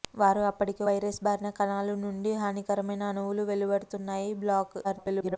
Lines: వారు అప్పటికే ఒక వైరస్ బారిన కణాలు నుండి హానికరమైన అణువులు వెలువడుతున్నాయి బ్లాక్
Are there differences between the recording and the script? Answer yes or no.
yes